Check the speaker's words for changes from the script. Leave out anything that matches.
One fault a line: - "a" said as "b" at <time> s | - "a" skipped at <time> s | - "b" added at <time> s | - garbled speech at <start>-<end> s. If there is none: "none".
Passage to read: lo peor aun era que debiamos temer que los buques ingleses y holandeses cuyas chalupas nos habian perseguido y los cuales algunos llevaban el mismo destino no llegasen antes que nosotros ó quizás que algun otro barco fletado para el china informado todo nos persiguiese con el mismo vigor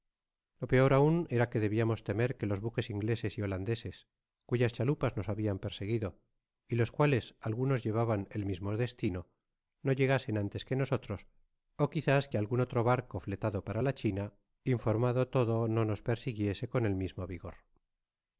- "el" said as "la" at 13.8 s
- "no" added at 15.7 s